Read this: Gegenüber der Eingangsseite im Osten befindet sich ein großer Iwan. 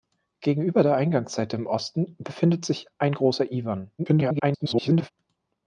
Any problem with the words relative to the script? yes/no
yes